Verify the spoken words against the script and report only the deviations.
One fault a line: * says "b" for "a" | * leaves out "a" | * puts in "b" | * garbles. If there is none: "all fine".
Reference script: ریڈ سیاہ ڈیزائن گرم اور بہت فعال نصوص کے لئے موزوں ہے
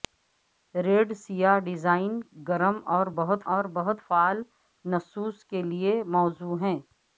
* puts in "اور بہت"